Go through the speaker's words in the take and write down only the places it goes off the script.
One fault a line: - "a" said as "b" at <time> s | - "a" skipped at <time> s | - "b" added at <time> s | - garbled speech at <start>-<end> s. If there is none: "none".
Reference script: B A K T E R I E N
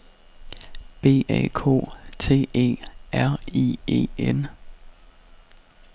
none